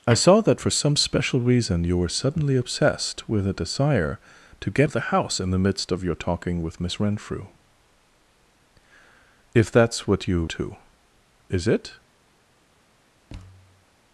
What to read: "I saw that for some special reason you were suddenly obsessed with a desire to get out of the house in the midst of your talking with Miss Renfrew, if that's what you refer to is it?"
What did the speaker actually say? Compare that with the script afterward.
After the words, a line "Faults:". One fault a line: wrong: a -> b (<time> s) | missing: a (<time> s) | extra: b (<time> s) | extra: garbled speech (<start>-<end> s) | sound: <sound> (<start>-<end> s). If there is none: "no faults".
"I saw that for some special reason you were suddenly obsessed with a desire to get of the house in the midst of your talking with Miss Renfrew, if that's what you to is it?"
Faults:
missing: out (4.9 s)
missing: refer (10.4 s)
sound: thud (13.3-13.9 s)